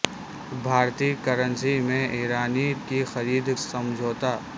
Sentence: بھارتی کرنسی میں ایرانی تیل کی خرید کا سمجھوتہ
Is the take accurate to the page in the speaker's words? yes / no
no